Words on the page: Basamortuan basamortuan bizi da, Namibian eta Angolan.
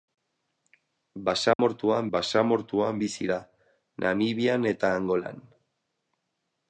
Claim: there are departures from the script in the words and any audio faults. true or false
true